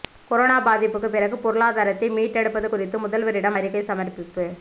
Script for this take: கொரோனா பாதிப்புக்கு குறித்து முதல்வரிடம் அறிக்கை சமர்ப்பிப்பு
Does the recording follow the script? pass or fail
fail